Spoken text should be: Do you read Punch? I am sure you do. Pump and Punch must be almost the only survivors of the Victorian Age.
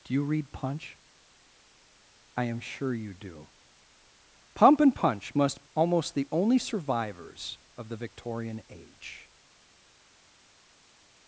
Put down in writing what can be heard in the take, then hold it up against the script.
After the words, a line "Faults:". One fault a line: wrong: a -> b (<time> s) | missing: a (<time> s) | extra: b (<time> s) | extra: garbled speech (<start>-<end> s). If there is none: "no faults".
Do you read Punch? I am sure you do. Pump and Punch must almost the only survivors of the Victorian Age.
Faults:
missing: be (5.7 s)